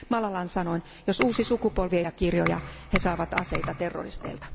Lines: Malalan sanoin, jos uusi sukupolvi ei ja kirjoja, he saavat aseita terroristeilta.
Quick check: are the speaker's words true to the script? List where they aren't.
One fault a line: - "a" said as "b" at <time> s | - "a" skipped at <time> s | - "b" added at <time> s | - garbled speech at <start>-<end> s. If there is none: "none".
none